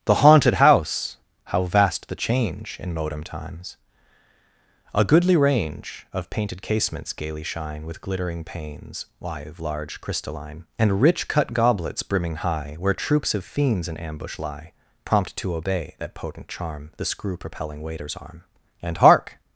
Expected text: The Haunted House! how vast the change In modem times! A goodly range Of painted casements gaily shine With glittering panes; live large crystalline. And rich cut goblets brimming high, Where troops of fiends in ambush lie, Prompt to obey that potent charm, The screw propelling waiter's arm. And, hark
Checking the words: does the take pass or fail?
pass